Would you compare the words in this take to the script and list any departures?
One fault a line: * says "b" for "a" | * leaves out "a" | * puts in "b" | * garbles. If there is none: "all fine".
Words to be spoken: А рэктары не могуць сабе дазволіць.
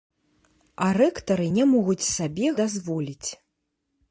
all fine